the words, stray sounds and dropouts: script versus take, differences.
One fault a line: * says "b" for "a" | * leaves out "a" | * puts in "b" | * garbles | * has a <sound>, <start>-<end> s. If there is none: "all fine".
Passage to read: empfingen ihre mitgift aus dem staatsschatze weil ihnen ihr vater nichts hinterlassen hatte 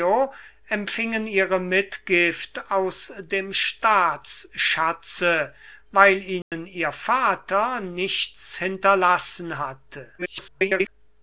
* has a dropout, 6.4-6.5 s
* garbles